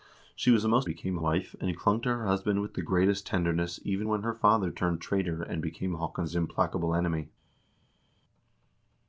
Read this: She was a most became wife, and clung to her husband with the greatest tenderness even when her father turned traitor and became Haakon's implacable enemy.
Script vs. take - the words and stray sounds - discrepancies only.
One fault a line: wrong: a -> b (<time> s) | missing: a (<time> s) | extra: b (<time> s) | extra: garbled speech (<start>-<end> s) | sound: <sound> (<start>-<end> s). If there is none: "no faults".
no faults